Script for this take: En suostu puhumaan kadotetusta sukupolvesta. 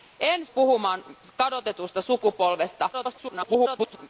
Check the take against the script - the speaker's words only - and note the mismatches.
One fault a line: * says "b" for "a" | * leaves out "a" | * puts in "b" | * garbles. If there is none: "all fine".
* leaves out "suostu"
* garbles